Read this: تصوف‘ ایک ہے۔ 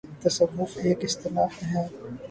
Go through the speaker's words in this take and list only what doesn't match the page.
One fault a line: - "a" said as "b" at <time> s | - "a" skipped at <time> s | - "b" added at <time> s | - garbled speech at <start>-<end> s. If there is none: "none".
- "اصطلاح" added at 1.1 s